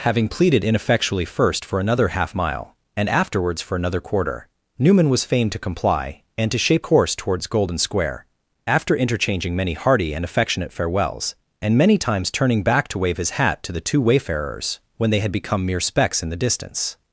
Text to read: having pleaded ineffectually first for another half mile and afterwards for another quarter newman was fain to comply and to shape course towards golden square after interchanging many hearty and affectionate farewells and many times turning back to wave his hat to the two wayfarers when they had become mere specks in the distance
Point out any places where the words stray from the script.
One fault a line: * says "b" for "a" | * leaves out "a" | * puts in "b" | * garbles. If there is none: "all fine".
all fine